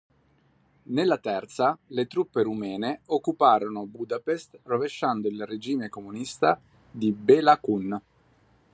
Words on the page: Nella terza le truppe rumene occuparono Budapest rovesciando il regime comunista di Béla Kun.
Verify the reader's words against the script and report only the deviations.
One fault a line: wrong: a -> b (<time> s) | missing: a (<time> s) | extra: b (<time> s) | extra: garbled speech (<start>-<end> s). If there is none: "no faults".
no faults